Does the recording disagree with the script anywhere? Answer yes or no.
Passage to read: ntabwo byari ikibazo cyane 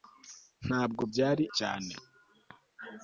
yes